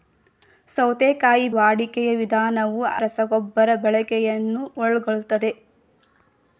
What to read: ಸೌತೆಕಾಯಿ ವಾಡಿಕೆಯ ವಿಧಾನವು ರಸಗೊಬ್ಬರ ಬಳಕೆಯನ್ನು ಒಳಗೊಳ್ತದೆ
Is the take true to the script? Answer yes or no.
yes